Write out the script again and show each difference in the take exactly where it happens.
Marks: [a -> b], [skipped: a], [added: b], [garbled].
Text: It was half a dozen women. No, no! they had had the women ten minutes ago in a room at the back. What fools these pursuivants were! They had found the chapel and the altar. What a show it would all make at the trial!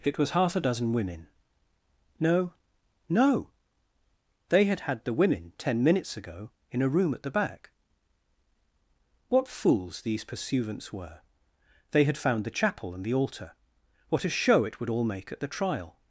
It was half a dozen women. No, no! they had had the women ten minutes ago in a room at the back. What fools these pursuivants were! They had found the chapel and the altar. What a show it would all make at the trial!